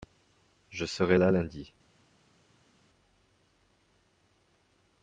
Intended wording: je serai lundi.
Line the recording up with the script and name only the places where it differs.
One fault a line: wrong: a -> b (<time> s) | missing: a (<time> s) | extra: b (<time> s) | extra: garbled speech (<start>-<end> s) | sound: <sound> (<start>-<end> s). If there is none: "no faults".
extra: là (1.2 s)